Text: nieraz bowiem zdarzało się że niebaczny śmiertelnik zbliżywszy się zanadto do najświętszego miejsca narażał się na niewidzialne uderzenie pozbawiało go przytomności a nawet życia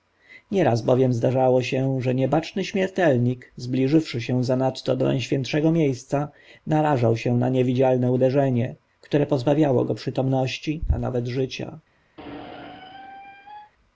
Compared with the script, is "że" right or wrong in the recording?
right